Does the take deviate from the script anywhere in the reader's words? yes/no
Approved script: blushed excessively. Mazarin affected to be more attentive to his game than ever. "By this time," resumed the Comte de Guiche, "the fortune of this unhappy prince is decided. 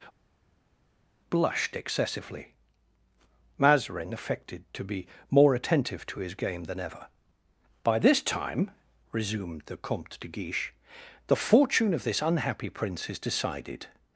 no